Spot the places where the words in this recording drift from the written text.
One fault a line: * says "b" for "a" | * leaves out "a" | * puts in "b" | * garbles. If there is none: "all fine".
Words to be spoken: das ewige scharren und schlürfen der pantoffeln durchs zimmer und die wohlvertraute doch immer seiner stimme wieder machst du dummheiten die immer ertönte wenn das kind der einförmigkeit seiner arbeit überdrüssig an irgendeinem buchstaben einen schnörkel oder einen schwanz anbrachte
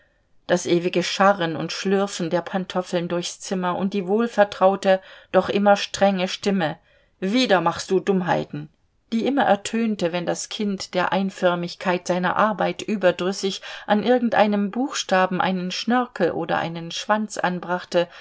* says "strenge" for "seiner"